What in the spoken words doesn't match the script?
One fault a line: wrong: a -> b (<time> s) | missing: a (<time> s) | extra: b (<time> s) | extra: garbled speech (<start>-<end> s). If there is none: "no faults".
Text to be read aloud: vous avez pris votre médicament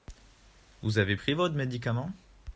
no faults